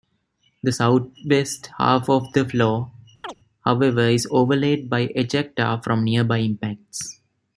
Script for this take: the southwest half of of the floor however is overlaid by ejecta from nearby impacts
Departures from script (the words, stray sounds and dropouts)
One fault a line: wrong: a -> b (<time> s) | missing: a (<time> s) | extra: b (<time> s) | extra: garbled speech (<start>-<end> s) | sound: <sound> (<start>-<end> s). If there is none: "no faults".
missing: of (2.3 s)
sound: chirp (3.2-3.4 s)